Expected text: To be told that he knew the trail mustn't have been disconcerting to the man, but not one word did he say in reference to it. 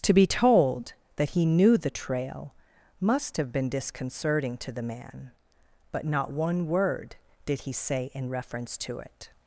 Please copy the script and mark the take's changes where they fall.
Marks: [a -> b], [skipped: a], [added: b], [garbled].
To be told that he knew the trail [mustn't -> must] have been disconcerting to the man, but not one word did he say in reference to it.